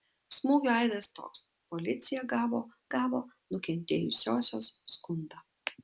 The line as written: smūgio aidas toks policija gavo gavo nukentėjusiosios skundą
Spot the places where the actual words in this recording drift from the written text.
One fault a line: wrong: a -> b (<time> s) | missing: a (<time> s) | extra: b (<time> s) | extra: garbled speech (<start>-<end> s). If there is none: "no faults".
no faults